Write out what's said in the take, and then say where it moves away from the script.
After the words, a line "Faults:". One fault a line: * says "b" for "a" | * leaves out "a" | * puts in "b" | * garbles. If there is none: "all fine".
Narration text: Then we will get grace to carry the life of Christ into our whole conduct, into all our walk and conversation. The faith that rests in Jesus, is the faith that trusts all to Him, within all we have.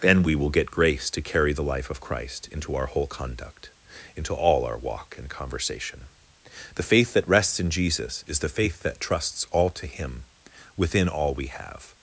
Then we will get grace to carry the life of Christ into our whole conduct, into all our walk and conversation. The faith that rests in Jesus, is the faith that trusts all to Him, within all we have.
Faults:
all fine